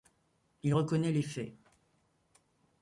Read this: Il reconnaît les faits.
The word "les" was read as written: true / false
true